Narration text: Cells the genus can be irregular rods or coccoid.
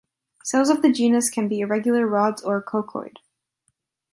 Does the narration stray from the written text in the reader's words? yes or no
yes